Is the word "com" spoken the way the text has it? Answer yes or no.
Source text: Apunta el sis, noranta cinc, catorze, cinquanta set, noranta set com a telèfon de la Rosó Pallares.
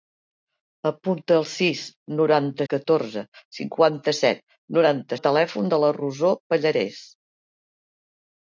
no